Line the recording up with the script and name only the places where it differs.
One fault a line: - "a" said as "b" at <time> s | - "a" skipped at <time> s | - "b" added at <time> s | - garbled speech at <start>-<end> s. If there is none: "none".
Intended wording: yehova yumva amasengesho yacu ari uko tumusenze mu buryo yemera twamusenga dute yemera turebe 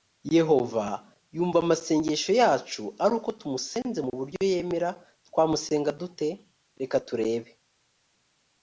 - "yemera" said as "reka" at 6.8 s